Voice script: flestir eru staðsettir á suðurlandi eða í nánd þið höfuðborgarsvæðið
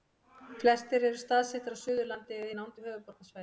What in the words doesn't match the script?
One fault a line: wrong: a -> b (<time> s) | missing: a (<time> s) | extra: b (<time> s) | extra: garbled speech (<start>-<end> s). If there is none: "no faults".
wrong: þið -> við (2.8 s)